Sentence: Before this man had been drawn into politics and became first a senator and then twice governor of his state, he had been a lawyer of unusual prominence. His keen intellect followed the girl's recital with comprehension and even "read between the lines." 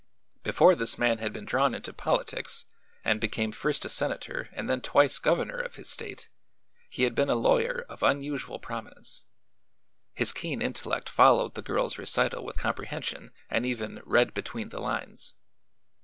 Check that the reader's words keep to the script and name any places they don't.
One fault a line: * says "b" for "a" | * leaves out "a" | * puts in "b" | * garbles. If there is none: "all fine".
all fine